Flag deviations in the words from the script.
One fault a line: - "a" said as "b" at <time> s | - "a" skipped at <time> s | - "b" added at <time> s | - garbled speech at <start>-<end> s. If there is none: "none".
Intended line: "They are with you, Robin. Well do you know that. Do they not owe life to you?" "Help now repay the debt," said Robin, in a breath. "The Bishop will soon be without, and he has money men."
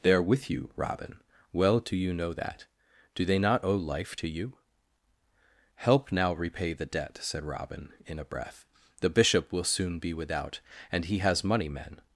none